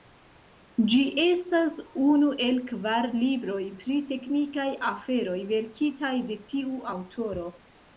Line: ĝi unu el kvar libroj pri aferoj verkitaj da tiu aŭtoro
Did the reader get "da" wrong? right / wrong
wrong